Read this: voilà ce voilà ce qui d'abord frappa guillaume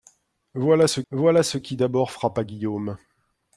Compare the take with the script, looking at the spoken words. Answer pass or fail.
pass